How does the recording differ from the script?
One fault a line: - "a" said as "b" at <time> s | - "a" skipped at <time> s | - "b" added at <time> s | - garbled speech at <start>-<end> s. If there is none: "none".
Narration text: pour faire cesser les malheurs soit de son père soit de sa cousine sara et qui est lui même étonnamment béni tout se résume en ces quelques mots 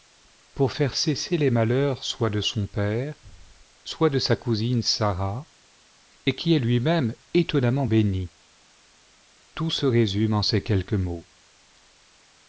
none